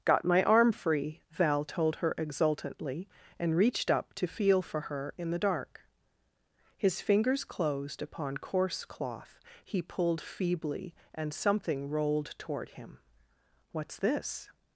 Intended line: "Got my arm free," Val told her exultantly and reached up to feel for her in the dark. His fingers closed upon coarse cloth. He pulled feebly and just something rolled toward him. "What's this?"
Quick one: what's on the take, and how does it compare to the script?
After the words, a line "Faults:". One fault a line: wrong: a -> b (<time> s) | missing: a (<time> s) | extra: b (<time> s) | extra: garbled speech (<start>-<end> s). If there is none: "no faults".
"Got my arm free," Val told her exultantly and reached up to feel for her in the dark. His fingers closed upon coarse cloth. He pulled feebly and something rolled toward him. "What's this?"
Faults:
missing: just (11.3 s)